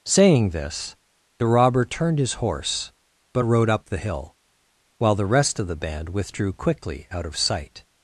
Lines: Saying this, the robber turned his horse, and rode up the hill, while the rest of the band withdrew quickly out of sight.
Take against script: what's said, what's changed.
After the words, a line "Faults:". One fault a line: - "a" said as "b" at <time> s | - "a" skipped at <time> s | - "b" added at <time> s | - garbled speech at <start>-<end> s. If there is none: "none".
Saying this, the robber turned his horse, but rode up the hill, while the rest of the band withdrew quickly out of sight.
Faults:
- "and" said as "but" at 3.3 s